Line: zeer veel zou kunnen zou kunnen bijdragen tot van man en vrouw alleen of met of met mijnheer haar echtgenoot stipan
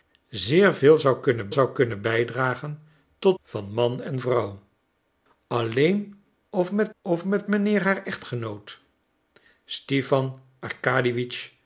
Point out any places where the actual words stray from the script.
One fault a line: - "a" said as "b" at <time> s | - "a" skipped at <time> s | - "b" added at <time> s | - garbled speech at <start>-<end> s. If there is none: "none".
none